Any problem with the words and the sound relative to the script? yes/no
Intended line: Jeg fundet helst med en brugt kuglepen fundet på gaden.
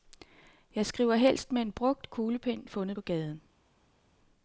yes